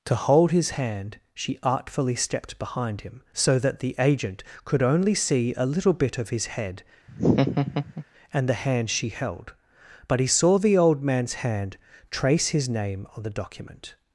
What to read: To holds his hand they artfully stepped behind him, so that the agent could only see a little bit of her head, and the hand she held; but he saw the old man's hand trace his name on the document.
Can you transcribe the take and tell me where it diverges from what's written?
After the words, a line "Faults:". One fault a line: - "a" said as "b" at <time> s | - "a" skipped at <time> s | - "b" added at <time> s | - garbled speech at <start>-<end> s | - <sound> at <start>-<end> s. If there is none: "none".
To hold his hand she artfully stepped behind him, so that the agent could only see a little bit of his head, and the hand she held; but he saw the old man's hand trace his name on the document.
Faults:
- "holds" said as "hold" at 0.1 s
- "they" said as "she" at 1.3 s
- "her" said as "his" at 6.3 s
- laugh at 7.1-8.0 s